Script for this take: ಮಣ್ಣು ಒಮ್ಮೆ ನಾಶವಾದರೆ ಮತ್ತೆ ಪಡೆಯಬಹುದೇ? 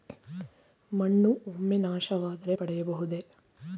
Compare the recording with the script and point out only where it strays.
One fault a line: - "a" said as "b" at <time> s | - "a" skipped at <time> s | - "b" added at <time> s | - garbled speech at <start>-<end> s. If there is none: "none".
- "ಮತ್ತೆ" skipped at 2.5 s